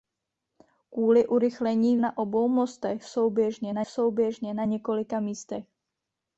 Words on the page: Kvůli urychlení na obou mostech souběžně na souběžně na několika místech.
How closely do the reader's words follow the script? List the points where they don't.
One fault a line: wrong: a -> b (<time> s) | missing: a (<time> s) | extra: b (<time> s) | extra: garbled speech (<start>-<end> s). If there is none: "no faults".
no faults